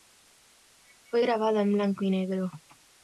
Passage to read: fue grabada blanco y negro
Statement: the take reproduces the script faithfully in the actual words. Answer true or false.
false